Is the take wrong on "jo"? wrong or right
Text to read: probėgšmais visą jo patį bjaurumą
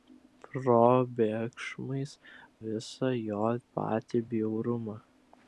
right